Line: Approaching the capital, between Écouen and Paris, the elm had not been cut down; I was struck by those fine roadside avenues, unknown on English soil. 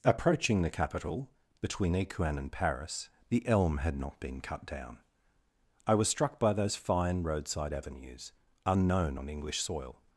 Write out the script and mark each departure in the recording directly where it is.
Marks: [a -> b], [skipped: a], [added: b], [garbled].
Approaching the capital, between Écouen and Paris, the elm had not been cut down; I was struck by those fine roadside avenues, unknown on English soil.